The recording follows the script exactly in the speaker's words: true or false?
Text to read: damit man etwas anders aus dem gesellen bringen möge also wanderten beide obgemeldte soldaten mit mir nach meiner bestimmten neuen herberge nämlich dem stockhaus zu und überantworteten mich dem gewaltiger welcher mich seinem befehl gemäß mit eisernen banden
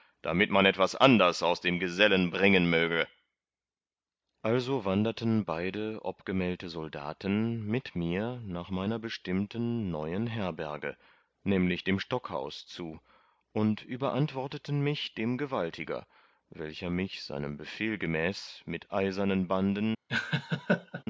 true